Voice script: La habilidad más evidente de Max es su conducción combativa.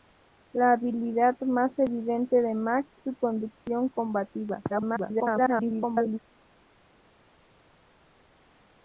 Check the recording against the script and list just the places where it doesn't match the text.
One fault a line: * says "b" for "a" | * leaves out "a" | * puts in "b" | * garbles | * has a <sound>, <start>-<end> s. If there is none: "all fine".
* leaves out "es"
* garbles